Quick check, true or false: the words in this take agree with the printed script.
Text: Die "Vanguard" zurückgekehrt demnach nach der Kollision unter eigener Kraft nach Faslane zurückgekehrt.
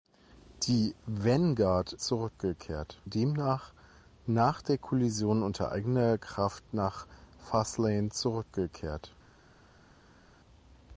true